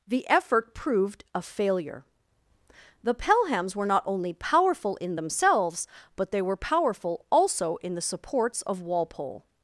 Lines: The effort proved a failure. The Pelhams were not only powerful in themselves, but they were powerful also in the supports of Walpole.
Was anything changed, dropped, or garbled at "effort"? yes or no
no